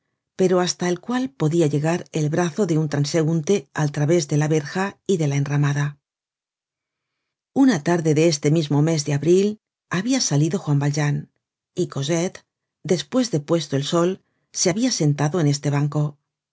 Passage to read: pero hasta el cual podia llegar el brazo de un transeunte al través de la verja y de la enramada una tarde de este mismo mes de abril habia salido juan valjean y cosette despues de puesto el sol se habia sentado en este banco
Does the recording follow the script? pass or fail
pass